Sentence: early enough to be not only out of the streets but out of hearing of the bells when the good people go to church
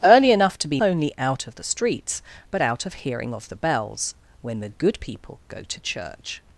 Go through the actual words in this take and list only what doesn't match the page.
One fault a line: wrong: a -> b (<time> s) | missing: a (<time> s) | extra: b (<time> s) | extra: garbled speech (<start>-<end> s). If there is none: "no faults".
missing: not (0.8 s)